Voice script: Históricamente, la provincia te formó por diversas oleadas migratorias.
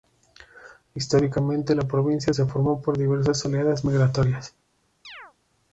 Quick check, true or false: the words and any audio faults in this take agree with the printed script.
false